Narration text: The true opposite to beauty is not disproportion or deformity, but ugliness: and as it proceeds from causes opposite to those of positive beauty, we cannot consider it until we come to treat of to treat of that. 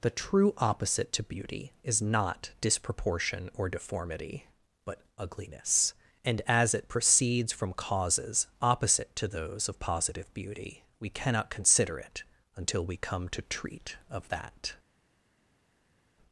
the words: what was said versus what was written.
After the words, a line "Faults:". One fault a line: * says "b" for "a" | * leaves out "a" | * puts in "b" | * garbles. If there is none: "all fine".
The true opposite to beauty is not disproportion or deformity, but ugliness: and as it proceeds from causes opposite to those of positive beauty, we cannot consider it until we come to treat of that.
Faults:
* leaves out "to treat of"